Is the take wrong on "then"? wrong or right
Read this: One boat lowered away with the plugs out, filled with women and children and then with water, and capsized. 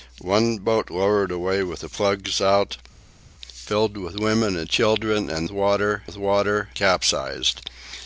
wrong